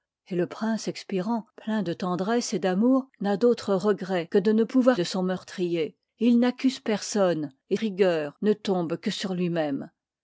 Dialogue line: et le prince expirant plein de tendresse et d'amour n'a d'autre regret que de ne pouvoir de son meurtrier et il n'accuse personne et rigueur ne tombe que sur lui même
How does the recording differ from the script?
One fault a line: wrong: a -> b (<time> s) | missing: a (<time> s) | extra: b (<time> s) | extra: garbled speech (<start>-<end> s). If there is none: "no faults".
no faults